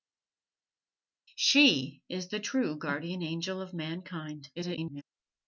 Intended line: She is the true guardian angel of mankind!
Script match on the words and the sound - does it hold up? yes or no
no